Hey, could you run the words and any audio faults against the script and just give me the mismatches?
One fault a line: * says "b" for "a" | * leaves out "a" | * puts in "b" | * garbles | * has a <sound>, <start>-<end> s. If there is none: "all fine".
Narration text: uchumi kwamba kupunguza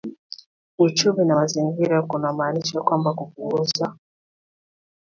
* puts in "na mazingira kunamaanisha"